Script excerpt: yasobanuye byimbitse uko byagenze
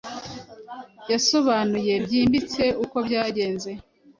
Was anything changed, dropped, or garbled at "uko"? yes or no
no